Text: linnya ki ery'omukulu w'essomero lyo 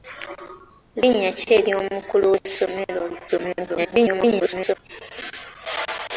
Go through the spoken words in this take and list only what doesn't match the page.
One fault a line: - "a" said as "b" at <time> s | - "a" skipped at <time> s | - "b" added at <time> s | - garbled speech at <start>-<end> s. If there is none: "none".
- garbled speech at 3.3-4.8 s